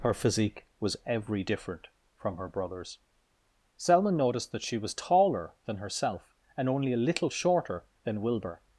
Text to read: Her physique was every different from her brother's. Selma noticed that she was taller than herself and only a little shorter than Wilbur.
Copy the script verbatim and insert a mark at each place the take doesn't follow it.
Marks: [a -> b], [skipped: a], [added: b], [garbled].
Her physique was every different from her brother's. Selma noticed that she was taller than herself and only a little shorter than Wilbur.